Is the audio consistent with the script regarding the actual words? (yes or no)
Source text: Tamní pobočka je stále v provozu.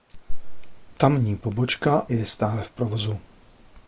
yes